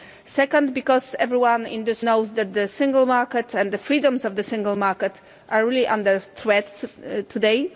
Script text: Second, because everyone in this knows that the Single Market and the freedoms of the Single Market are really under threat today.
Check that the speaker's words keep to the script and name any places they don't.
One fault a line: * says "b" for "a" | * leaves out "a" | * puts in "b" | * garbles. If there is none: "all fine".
all fine